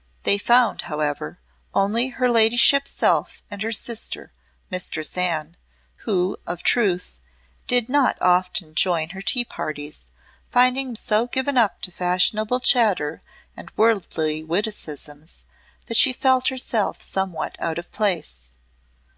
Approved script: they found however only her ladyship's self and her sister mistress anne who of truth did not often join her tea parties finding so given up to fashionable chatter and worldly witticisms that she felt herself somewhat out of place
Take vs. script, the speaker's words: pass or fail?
pass